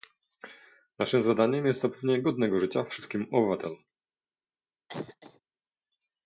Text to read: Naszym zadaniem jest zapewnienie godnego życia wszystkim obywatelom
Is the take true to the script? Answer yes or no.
yes